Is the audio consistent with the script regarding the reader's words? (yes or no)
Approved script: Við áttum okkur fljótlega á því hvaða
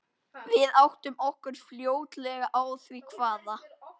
yes